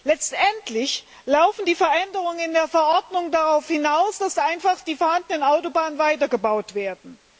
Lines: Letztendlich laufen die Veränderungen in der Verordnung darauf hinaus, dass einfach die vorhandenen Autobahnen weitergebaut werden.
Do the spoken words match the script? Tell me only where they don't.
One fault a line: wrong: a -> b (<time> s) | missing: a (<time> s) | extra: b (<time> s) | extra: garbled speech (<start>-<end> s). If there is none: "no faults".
no faults